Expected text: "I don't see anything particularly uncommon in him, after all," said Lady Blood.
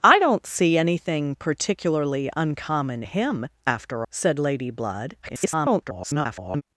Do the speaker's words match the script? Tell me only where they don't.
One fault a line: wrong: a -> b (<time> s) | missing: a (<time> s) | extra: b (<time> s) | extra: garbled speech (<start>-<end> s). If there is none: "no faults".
missing: in (3.0 s)
missing: all (4.1 s)
extra: garbled speech (5.2-6.6 s)